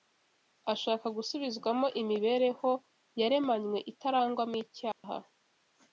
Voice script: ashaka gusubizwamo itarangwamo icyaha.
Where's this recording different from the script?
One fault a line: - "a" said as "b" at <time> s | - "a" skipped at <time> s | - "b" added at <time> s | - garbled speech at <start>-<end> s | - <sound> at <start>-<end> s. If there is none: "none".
- "imibereho yaremanywe" added at 2.0 s
- dropout at 4.9-5.0 s